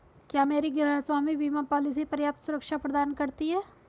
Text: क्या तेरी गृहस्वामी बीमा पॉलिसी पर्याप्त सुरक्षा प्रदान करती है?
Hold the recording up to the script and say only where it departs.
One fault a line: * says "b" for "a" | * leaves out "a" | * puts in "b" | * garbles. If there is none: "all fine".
* says "मेरी" for "तेरी"